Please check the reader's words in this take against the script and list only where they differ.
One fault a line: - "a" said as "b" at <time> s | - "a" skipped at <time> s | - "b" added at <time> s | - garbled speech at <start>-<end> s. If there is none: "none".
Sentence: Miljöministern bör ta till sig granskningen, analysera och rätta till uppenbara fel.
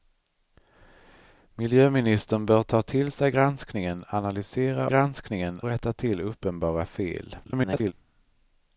- "och" said as "granskningen" at 4.9 s
- garbled speech at 7.4-7.9 s